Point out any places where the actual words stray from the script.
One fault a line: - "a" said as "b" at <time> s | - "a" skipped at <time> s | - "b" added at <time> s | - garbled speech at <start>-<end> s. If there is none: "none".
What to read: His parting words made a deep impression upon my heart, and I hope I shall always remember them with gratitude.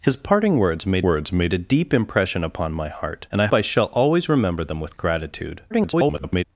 - "words made" added at 1.0 s
- "hope" skipped at 3.5 s
- garbled speech at 5.7-6.4 s